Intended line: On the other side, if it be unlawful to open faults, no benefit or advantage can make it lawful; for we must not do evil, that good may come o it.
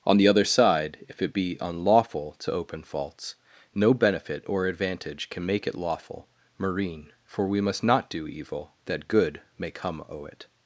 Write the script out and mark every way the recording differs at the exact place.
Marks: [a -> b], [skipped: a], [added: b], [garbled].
On the other side, if it be unlawful to open faults, no benefit or advantage can make it lawful; [added: marine] for we must not do evil, that good may come o it.